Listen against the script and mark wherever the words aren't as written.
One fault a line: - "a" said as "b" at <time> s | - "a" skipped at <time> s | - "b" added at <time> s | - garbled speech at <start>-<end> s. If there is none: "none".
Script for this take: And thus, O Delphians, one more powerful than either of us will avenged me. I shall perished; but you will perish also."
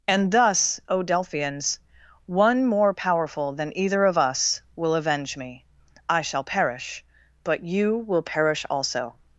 - "avenged" said as "avenge" at 5.0 s
- "perished" said as "perish" at 6.4 s